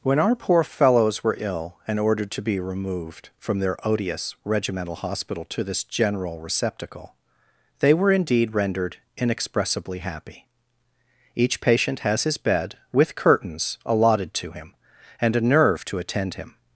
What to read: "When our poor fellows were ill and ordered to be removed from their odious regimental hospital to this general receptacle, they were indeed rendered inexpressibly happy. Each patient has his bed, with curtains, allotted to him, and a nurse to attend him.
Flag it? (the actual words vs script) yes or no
yes